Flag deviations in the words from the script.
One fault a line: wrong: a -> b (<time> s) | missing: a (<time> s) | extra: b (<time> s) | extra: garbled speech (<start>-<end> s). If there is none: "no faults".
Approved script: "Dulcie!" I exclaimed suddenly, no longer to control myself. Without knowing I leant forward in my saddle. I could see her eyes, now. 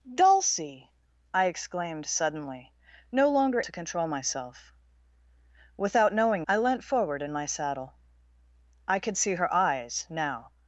no faults